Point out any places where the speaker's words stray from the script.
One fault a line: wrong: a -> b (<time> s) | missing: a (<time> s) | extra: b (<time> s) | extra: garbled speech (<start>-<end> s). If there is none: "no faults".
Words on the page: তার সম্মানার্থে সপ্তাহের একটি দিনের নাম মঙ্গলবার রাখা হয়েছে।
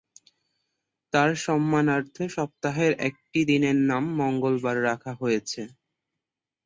no faults